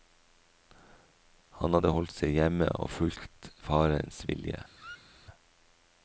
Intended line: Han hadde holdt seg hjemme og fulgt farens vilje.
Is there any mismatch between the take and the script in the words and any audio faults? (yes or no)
yes